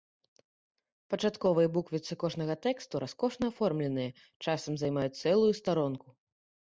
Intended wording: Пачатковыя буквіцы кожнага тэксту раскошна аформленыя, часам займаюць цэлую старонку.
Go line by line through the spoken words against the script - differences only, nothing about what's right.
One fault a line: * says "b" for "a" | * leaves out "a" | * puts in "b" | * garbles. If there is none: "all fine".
all fine